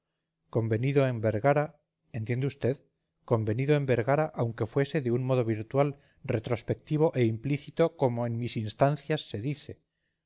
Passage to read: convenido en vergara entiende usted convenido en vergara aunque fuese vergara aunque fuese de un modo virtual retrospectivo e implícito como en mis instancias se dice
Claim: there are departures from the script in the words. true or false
true